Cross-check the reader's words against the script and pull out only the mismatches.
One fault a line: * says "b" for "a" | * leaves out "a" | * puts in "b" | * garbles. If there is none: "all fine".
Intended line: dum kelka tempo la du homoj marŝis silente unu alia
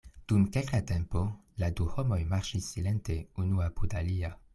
* puts in "apud"